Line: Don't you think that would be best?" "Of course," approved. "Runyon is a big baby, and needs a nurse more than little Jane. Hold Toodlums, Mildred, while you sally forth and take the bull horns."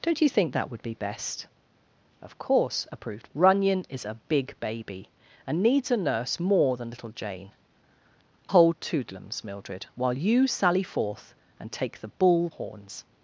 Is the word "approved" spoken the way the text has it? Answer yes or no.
yes